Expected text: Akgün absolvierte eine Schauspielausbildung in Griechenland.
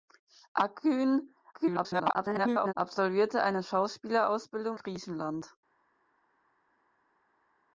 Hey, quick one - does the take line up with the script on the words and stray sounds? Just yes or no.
no